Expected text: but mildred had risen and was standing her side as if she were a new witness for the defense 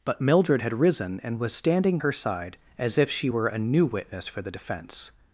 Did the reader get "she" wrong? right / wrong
right